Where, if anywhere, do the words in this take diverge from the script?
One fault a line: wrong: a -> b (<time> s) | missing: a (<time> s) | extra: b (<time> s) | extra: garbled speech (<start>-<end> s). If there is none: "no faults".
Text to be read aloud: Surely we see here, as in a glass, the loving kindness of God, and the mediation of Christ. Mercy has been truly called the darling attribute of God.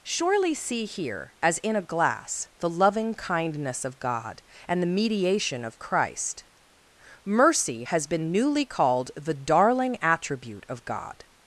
missing: we (0.5 s)
wrong: truly -> newly (8.3 s)